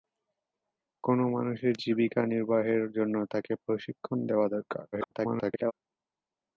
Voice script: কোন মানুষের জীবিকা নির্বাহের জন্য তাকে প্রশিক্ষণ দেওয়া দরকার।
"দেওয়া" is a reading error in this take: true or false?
false